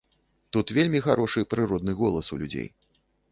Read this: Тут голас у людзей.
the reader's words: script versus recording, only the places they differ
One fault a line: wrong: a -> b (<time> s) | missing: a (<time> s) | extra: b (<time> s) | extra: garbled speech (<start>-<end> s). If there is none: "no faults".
extra: вельмі харошы прыродны (0.8 s)